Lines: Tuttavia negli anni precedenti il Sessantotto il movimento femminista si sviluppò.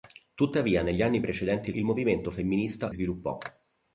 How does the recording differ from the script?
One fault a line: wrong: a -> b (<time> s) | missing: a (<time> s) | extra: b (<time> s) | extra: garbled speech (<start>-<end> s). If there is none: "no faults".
missing: Sessantotto (1.8 s)
missing: si (2.9 s)